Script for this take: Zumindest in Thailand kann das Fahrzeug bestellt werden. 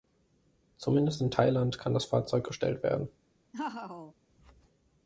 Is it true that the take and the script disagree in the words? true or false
false